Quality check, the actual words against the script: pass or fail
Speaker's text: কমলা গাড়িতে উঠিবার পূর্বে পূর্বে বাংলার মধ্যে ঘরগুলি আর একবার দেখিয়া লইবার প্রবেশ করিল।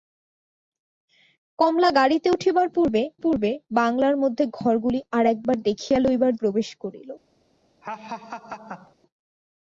pass